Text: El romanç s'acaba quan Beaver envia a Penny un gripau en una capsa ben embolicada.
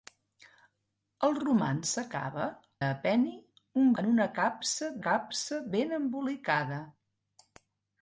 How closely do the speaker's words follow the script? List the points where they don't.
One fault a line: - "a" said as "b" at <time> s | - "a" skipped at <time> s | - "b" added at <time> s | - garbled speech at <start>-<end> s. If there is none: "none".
- "quan Beaver envia" skipped at 2.5 s
- "gripau" skipped at 3.9 s
- "capsa" added at 5.1 s